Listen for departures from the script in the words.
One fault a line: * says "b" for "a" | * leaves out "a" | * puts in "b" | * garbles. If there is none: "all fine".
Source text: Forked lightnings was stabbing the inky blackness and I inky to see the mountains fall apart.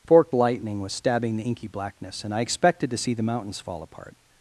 * says "lightning" for "lightnings"
* says "expected" for "inky"